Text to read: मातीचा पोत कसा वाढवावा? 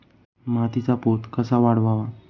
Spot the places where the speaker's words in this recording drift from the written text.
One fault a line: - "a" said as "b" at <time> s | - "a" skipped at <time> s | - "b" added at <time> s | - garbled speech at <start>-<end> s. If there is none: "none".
none